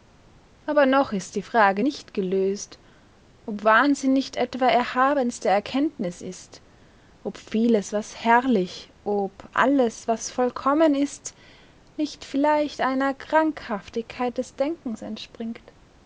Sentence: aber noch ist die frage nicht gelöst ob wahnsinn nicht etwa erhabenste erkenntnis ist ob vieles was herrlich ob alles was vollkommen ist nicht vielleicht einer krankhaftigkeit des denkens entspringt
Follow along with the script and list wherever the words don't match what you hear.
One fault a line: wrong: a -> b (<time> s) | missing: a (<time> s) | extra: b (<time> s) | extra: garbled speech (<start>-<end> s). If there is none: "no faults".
no faults